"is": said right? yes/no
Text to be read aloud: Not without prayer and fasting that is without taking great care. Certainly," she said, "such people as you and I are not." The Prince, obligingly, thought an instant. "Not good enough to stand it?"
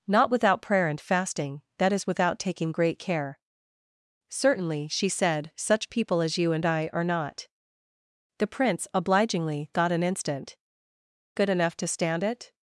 yes